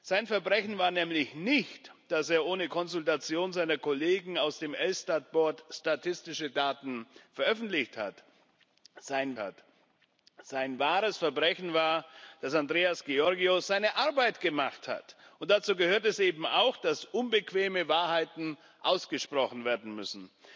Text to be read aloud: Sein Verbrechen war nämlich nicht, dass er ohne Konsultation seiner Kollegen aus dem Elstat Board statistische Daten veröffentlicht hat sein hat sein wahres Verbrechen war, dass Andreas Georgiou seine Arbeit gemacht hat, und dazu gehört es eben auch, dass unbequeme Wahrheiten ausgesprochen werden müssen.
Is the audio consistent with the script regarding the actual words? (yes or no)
yes